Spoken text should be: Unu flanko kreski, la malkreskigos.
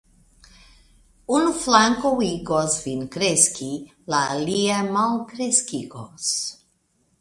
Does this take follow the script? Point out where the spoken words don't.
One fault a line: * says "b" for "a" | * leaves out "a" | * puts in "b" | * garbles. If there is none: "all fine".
* puts in "igos vin"
* puts in "alia"